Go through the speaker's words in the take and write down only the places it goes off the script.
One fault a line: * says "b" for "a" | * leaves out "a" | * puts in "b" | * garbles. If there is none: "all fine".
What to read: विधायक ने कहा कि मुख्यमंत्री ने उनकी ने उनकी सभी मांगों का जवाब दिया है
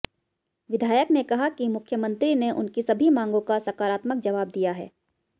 * leaves out "ने उनकी"
* puts in "सकारात्मक"